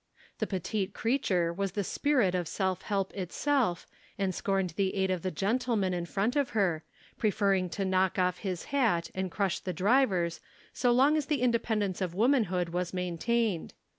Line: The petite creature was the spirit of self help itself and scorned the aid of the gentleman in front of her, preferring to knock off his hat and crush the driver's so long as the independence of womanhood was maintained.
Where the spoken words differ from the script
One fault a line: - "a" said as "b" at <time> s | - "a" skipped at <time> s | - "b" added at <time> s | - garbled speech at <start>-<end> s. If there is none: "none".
none